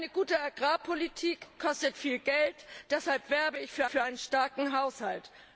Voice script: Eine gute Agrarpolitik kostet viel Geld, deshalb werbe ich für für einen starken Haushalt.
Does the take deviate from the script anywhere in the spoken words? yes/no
no